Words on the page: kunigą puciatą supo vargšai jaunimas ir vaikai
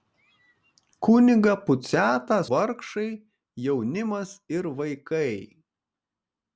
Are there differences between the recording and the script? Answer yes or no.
yes